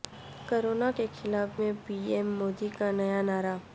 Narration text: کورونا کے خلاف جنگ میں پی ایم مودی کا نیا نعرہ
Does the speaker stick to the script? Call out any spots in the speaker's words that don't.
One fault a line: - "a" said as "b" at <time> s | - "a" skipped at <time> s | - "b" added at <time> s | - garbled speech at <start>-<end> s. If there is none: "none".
- "جنگ" skipped at 1.6 s